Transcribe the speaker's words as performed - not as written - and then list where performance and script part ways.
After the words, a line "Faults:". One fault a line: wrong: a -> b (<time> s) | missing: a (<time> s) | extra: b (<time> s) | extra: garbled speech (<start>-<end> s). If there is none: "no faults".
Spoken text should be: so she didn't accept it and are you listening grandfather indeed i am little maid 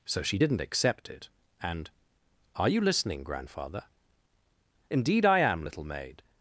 so she didn't accept it and are you listening grandfather indeed i am little maid
Faults:
no faults